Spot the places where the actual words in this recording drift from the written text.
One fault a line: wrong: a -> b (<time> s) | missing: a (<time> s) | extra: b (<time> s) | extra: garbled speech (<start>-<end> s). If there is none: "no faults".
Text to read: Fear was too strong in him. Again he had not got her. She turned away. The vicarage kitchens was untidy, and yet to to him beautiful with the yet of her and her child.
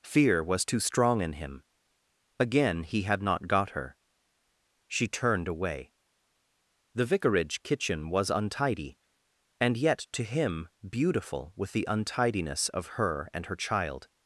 wrong: kitchens -> kitchen (7.6 s)
missing: to (10.2 s)
wrong: yet -> untidiness (11.9 s)